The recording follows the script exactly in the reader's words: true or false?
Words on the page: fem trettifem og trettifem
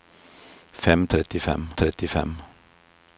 true